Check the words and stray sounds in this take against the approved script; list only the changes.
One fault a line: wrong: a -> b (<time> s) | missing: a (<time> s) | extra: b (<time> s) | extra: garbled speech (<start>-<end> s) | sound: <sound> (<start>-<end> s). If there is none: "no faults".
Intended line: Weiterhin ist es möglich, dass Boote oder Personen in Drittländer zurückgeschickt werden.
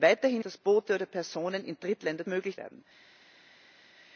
missing: ist es möglich (0.4 s)
wrong: zurückgeschickt -> möglich (2.3 s)